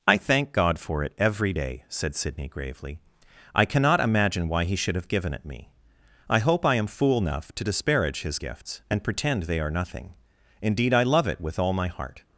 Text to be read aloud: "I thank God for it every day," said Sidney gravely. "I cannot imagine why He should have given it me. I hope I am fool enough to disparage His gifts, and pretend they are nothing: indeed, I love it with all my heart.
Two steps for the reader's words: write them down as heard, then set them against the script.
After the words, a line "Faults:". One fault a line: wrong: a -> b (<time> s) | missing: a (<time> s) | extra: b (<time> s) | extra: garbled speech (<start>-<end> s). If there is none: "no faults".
"I thank God for it every day," said Sidney gravely. "I cannot imagine why He should have given it me. I hope I am fool enough to disparage His gifts, and pretend they are nothing: indeed, I love it with all my heart.
Faults:
no faults